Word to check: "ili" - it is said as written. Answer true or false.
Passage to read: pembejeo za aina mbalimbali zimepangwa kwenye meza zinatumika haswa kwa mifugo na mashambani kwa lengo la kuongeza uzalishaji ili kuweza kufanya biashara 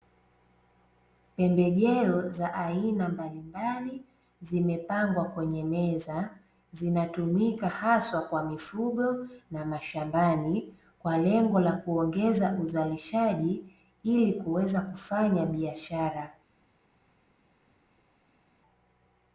true